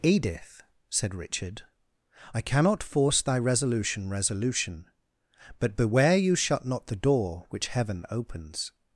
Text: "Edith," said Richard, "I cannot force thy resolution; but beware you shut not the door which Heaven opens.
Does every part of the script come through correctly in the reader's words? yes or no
no